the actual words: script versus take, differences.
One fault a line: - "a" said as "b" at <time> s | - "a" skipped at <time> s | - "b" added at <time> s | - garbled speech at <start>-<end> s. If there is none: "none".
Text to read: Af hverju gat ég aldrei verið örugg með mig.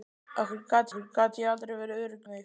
- "hverju gat" added at 0.9 s
- "með" skipped at 2.3 s